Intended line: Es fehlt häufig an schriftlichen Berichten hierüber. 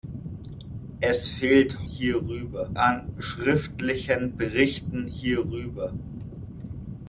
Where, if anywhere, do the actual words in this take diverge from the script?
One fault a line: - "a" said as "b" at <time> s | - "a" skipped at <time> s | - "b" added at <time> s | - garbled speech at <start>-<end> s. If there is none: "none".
- "häufig" said as "hierüber" at 1.8 s